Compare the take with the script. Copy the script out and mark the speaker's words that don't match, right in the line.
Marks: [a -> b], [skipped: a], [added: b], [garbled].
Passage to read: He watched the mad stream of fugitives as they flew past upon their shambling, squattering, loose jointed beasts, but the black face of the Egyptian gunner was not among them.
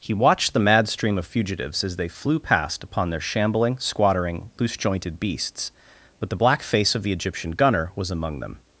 He watched the mad stream of fugitives as they flew past upon their shambling, squattering, loose jointed beasts, but the black face of the Egyptian gunner was [skipped: not] among them.